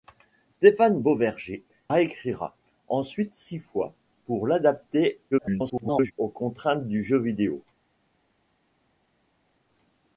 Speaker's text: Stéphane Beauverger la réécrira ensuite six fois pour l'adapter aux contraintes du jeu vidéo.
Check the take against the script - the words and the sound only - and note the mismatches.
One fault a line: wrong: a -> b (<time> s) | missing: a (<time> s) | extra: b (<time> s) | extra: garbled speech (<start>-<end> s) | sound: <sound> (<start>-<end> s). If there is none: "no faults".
missing: la (1.6 s)
extra: garbled speech (5.3-6.1 s)